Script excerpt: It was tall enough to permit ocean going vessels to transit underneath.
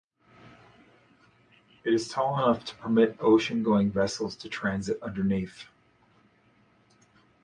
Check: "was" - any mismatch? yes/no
yes